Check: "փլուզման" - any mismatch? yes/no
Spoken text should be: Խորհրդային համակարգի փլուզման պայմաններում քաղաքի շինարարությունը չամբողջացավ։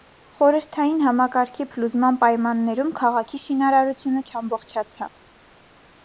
no